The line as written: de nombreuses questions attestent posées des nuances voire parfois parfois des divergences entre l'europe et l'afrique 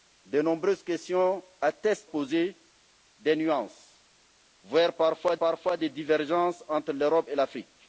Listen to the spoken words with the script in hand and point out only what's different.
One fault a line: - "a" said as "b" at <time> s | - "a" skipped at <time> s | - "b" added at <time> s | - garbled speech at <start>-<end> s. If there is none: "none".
none